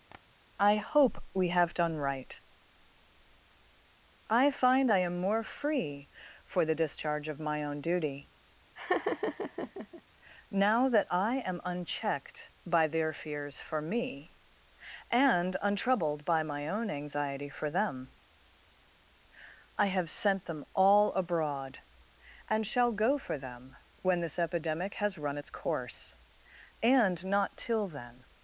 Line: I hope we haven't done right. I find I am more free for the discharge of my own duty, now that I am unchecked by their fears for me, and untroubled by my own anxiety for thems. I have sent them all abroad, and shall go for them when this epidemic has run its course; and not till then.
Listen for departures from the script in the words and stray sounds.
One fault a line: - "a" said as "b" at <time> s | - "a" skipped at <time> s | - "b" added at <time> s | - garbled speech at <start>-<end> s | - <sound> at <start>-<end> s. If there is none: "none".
- tap at 0.1-0.2 s
- "haven't" said as "have" at 1.5 s
- laugh at 8.8-10.0 s
- "thems" said as "them" at 17.7 s